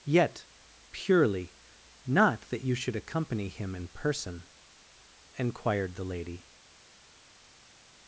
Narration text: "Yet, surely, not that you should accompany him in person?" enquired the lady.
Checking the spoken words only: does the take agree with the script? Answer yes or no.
no